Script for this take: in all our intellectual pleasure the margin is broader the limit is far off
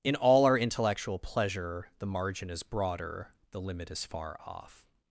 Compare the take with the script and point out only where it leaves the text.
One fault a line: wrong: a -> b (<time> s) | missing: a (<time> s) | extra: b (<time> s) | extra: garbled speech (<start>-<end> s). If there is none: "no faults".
no faults